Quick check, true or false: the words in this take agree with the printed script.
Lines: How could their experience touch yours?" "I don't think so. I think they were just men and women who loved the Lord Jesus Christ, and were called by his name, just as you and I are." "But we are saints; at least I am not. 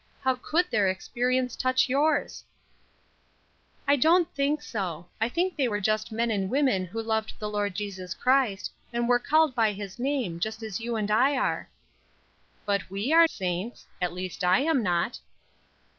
true